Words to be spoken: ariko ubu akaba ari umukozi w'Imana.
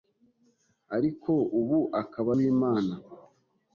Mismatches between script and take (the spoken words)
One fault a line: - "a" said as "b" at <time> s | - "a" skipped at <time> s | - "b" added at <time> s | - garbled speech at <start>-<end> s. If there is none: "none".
- "ari umukozi" skipped at 2.3 s